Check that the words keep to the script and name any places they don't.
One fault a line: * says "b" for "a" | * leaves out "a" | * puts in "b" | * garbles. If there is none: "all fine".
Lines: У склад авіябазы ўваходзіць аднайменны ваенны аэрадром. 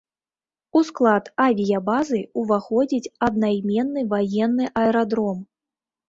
all fine